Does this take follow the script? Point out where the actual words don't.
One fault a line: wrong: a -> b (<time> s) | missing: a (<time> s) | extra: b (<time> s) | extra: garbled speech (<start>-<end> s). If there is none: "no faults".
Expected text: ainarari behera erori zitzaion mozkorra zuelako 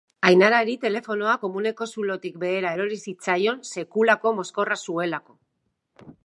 extra: telefonoa komuneko zulotik (0.8 s)
extra: sekulako (3.7 s)